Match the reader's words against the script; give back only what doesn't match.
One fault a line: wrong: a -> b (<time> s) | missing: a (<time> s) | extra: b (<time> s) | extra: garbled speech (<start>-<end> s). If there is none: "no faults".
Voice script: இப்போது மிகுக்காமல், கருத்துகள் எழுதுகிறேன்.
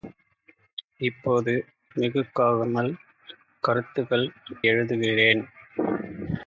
no faults